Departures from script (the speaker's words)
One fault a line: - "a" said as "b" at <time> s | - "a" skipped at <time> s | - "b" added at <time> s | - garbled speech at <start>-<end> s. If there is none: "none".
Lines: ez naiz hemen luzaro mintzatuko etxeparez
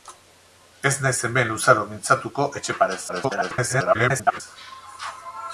- garbled speech at 3.1-4.4 s